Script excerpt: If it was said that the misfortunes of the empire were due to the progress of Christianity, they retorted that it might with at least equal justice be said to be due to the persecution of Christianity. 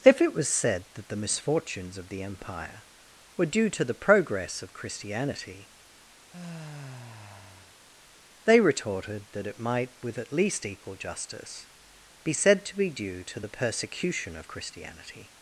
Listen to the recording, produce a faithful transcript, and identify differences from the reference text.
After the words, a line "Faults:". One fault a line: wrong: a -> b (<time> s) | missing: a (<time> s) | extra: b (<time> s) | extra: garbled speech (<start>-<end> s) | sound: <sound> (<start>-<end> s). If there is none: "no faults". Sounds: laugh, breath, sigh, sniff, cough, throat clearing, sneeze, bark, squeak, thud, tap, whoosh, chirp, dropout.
If it was said that the misfortunes of the empire were due to the progress of Christianity, they retorted that it might with at least equal justice be said to be due to the persecution of Christianity.
Faults:
sound: sigh (6.3-7.7 s)